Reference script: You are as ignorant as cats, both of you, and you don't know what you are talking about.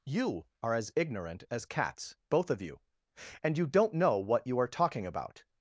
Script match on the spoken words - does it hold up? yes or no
yes